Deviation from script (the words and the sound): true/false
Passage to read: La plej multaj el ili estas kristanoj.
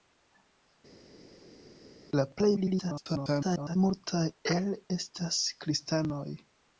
true